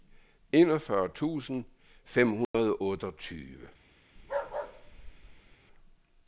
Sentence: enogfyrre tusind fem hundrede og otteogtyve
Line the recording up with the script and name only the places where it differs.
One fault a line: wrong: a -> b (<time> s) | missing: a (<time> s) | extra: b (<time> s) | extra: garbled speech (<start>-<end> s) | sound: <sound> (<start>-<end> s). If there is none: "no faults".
sound: dropout (2.4-2.5 s)
sound: bark (4.2-5.6 s)